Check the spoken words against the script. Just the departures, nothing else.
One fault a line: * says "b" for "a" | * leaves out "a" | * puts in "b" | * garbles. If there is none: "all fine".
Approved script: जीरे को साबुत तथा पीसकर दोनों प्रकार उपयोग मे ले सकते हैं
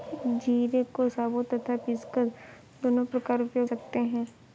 * leaves out "मे ले"